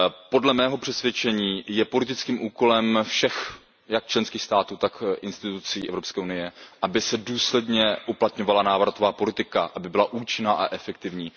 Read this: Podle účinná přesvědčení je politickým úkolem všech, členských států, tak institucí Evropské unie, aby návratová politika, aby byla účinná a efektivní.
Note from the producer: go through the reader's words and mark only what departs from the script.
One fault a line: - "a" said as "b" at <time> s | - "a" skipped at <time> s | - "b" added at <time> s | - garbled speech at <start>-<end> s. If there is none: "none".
- "účinná" said as "mého" at 0.5 s
- "jak" added at 3.9 s
- "se důsledně uplatňovala" added at 7.0 s